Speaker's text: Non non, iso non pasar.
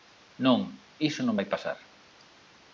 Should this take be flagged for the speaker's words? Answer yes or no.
yes